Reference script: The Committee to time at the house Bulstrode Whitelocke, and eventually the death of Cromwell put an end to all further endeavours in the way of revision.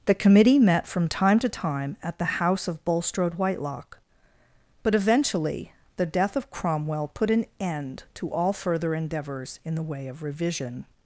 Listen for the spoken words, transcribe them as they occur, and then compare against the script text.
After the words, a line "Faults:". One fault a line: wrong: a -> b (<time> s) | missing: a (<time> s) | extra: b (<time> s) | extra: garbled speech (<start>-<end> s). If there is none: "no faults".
The Committee met from time to time at the house of Bulstrode Whitelocke, but eventually the death of Cromwell put an end to all further endeavours in the way of revision.
Faults:
extra: met from time (0.6 s)
extra: of (2.7 s)
wrong: and -> but (4.8 s)